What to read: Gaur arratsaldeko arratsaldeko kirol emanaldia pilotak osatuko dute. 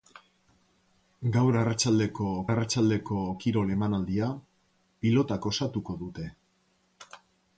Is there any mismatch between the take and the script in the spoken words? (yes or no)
no